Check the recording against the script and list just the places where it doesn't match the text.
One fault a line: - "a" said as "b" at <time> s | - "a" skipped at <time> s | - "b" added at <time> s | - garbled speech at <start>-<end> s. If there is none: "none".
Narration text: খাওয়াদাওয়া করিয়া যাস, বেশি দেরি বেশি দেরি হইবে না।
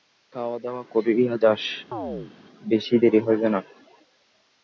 - "বেশি দেরি" skipped at 3.2 s